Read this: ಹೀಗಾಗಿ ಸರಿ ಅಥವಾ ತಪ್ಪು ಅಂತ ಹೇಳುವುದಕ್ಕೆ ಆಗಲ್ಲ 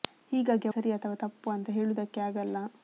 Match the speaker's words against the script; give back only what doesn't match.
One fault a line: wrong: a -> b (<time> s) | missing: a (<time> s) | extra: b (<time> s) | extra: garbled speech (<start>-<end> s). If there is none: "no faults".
no faults